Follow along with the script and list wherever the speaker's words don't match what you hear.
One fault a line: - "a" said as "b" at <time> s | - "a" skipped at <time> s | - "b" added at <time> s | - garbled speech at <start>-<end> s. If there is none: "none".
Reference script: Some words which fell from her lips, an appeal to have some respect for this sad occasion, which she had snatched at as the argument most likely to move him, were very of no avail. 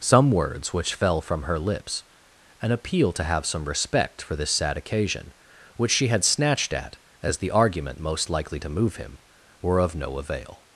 - "very" skipped at 9.8 s